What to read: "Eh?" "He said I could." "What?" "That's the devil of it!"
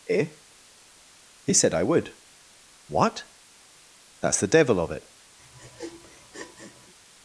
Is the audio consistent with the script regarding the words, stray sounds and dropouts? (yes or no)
no